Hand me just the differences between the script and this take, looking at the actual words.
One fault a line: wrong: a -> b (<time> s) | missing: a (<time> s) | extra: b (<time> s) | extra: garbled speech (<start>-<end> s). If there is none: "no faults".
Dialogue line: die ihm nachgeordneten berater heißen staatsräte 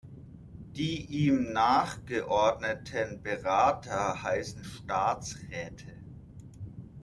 no faults